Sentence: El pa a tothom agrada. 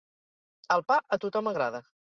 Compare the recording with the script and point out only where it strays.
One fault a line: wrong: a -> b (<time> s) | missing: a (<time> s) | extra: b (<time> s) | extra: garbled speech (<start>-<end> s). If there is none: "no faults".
no faults